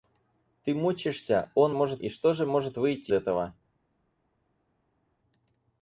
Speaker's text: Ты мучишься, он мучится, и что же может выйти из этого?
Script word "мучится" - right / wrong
wrong